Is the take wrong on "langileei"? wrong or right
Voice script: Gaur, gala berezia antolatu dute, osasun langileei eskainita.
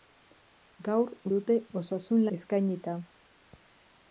wrong